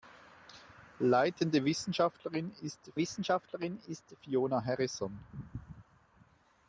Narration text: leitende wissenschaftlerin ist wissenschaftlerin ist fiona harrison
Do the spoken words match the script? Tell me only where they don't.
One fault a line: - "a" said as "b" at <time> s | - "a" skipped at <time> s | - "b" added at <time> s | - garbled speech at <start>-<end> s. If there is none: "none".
none